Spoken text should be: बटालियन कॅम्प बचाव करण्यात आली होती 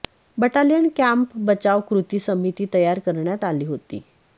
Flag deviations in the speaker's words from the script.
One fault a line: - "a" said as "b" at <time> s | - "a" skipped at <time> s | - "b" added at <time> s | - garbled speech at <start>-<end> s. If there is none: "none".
- "कृती समिती तयार" added at 1.9 s